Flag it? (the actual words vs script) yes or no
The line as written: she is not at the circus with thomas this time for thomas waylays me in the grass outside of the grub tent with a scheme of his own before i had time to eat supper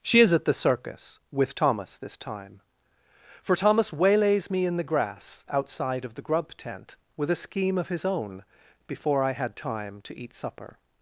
yes